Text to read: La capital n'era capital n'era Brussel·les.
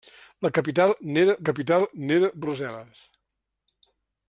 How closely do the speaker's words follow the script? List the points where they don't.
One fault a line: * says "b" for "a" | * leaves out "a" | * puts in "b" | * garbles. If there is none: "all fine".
all fine